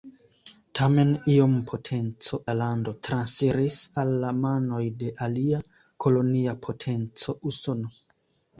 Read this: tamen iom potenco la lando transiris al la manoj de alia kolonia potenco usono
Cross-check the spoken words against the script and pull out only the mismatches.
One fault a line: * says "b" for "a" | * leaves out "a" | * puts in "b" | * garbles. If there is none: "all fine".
all fine